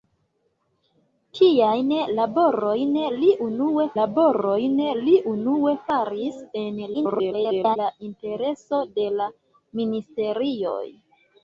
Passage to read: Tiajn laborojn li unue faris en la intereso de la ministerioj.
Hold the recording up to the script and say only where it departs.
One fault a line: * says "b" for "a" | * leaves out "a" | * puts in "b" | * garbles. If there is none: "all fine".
* puts in "laborojn li unue"
* garbles